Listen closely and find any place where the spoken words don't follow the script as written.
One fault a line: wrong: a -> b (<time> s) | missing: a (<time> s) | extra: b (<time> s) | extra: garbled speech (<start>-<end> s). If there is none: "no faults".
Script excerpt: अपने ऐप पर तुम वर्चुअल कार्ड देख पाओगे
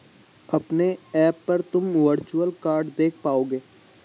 no faults